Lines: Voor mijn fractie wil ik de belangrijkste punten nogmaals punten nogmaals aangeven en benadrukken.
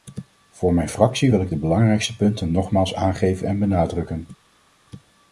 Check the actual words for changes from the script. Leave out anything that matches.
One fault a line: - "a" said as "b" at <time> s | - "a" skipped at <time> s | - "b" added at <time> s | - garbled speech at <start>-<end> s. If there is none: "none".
- "punten nogmaals" skipped at 2.9 s